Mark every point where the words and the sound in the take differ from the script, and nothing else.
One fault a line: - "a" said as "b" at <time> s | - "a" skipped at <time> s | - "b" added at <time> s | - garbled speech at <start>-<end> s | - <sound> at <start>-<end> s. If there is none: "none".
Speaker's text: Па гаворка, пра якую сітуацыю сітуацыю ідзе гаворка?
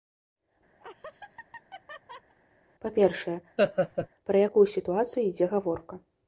- laugh at 0.8-2.3 s
- "гаворка" said as "першае" at 3.0 s
- laugh at 3.6-4.1 s
- "сітуацыю" skipped at 5.3 s